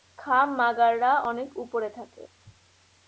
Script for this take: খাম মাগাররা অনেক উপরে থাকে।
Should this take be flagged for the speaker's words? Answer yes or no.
no